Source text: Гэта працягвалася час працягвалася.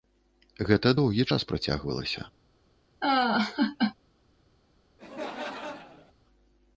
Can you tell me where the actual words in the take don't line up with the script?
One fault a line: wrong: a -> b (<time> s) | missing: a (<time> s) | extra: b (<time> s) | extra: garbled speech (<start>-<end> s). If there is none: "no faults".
wrong: працягвалася -> доўгі (1.0 s)